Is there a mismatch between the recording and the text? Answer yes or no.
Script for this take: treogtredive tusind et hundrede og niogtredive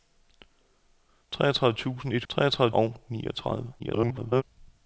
yes